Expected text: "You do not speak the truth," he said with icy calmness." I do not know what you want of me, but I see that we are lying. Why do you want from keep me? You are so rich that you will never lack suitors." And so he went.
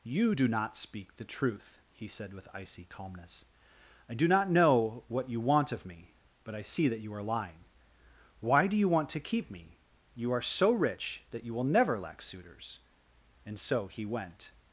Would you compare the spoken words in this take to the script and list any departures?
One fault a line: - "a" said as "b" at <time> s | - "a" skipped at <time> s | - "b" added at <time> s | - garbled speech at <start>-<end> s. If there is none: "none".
- "we" said as "you" at 7.0 s
- "from" said as "to" at 9.1 s